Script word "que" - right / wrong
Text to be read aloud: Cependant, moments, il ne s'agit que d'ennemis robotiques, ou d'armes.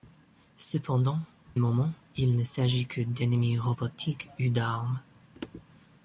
right